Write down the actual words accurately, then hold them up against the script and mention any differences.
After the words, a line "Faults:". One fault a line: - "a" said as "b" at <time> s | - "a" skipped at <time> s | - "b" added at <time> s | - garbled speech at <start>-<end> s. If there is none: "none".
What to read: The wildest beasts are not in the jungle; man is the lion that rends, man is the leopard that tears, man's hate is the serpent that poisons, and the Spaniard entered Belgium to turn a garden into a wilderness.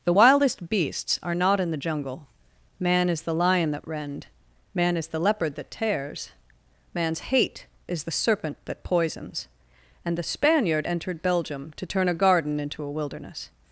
The wildest beasts are not in the jungle; man is the lion that rend, man is the leopard that tears, man's hate is the serpent that poisons, and the Spaniard entered Belgium to turn a garden into a wilderness.
Faults:
- "rends" said as "rend" at 3.9 s